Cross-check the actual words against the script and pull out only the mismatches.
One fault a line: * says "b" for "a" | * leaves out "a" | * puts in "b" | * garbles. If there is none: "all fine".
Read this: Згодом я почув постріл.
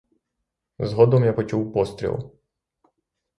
all fine